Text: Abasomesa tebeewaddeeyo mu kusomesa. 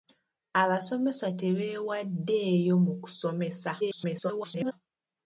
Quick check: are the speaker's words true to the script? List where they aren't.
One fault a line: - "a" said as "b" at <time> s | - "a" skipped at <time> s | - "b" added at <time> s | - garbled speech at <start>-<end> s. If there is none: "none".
- garbled speech at 3.8-4.7 s